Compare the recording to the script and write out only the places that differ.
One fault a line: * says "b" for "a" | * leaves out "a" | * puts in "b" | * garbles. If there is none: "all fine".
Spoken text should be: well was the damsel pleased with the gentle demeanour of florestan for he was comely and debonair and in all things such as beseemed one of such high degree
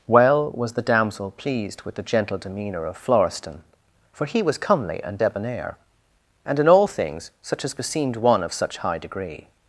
all fine